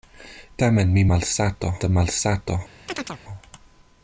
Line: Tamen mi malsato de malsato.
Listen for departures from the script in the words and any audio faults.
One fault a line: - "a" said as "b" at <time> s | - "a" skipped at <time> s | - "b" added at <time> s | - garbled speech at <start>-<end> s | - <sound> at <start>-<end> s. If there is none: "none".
- chirp at 2.9-3.2 s